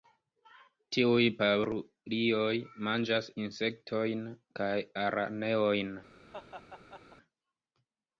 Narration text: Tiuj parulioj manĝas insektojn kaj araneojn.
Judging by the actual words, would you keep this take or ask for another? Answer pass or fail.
pass